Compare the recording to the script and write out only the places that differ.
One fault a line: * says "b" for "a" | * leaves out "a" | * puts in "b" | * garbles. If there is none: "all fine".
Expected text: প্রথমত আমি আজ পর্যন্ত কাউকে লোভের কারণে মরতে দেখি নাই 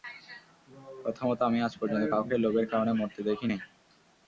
all fine